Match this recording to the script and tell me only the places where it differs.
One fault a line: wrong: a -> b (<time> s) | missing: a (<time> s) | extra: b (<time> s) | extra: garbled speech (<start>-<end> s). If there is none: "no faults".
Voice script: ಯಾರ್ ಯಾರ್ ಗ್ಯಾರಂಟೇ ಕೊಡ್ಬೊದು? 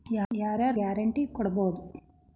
no faults